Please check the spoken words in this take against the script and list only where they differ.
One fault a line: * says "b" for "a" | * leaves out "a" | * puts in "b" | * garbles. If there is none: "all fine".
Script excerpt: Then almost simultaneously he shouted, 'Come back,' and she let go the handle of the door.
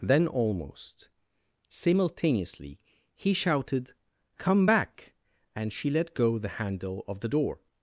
all fine